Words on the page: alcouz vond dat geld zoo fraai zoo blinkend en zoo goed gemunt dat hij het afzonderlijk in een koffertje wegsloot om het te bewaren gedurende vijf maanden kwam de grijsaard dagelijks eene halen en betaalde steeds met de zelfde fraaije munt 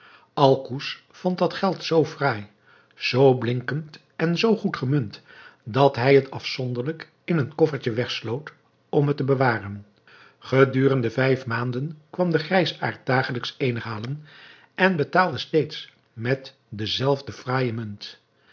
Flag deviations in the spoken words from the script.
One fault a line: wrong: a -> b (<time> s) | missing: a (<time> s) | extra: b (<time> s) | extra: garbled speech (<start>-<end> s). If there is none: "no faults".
no faults